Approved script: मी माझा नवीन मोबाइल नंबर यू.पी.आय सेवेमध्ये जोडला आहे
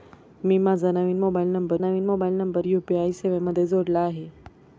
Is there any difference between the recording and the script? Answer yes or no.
yes